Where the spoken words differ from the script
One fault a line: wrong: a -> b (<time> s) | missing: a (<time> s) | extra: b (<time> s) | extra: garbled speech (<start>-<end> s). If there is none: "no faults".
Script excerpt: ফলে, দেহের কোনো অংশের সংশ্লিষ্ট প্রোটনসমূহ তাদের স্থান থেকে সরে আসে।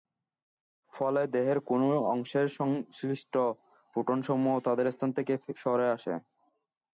no faults